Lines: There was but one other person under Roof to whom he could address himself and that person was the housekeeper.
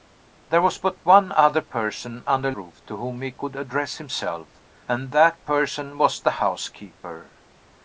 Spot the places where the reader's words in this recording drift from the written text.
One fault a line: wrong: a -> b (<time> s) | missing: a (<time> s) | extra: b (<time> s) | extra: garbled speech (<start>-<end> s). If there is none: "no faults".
no faults